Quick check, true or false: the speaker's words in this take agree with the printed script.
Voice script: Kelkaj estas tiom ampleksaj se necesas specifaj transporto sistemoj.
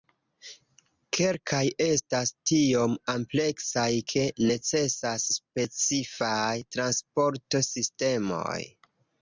false